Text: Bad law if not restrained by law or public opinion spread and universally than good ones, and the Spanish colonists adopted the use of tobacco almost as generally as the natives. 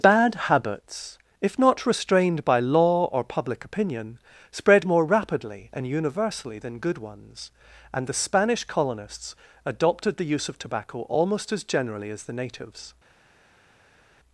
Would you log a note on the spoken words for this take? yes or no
yes